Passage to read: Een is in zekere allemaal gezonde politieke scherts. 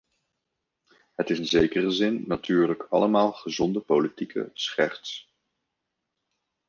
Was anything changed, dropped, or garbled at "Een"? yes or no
yes